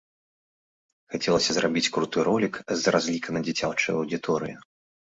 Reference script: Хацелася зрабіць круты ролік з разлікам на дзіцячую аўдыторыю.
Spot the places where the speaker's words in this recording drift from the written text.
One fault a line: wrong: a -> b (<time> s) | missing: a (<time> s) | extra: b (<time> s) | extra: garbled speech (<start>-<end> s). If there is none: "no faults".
no faults